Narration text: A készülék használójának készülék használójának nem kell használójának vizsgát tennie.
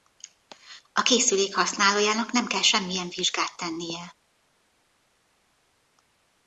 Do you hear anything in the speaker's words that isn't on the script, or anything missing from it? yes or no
yes